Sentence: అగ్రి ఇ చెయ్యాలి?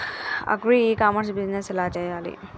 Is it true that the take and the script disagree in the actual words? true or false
true